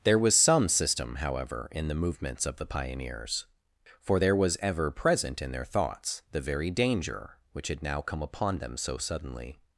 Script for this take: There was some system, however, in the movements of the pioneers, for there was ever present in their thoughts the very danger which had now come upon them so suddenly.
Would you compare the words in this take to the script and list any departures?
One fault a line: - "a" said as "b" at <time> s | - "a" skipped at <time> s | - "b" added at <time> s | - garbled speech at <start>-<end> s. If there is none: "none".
none